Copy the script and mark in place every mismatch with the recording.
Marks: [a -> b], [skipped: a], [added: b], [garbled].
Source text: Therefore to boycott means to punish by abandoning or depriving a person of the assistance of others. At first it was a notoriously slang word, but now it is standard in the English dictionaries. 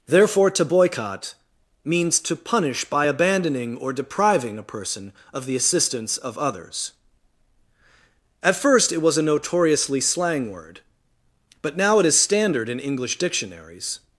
Therefore to boycott means to punish by abandoning or depriving a person of the assistance of others. At first it was a notoriously slang word, but now it is standard in [skipped: the] English dictionaries.